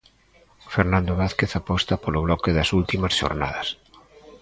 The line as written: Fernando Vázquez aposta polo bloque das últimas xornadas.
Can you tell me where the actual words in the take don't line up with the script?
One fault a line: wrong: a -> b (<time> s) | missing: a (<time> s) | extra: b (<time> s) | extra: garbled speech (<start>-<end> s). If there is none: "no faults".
no faults